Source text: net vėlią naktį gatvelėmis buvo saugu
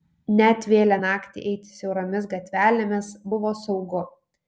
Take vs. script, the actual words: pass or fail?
fail